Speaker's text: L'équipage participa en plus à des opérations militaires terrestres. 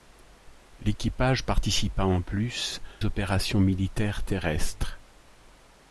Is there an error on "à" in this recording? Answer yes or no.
yes